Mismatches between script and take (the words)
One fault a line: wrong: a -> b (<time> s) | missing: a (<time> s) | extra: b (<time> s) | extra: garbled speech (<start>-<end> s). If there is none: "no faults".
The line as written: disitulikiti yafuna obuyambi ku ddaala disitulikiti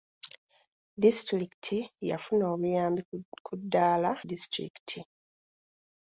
no faults